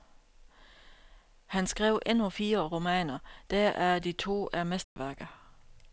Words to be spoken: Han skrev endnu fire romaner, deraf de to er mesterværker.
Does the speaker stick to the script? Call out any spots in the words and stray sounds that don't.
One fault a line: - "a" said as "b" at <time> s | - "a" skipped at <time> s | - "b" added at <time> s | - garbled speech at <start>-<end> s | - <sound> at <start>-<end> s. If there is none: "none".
- dropout at 4.8-5.0 s